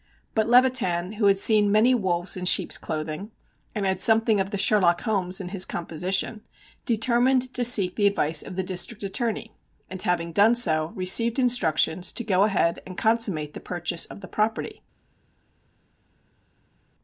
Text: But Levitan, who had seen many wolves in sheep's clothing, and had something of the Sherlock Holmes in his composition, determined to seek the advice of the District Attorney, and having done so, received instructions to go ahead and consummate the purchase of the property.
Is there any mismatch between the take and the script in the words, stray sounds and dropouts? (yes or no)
no